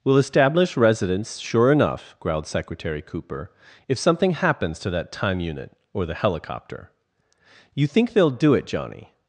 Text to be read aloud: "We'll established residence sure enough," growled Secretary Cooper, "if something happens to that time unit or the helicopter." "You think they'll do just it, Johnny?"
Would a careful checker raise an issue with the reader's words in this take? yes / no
yes